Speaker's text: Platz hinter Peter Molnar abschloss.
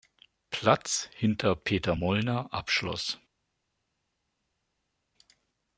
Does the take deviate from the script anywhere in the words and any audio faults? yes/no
no